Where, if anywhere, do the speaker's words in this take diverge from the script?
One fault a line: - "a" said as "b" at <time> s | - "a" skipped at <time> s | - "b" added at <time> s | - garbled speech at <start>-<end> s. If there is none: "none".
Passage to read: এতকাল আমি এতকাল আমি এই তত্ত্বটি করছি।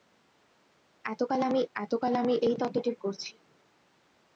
none